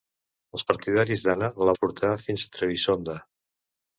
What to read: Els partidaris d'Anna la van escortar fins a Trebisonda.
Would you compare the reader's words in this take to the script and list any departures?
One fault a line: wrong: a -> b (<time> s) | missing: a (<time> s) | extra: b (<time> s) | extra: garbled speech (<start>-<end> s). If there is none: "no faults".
missing: van (1.7 s)